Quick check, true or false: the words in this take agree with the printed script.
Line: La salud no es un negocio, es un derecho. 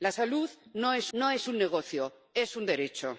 false